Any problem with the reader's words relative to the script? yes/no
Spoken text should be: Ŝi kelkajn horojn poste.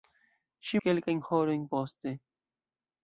no